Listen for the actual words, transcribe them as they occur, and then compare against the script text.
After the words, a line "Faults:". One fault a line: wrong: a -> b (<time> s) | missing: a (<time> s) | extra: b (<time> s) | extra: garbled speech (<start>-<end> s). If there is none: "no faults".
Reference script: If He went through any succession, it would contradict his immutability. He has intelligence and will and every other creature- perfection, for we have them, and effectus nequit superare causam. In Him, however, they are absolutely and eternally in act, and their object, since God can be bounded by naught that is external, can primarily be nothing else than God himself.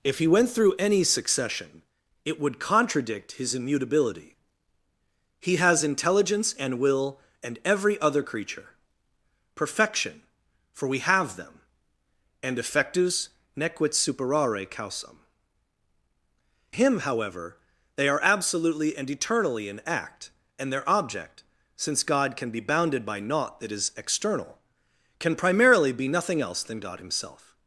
If He went through any succession, it would contradict his immutability. He has intelligence and will and every other creature- perfection, for we have them, and effectus nequit superare causam. Him, however, they are absolutely and eternally in act, and their object, since God can be bounded by naught that is external, can primarily be nothing else than God himself.
Faults:
missing: In (15.2 s)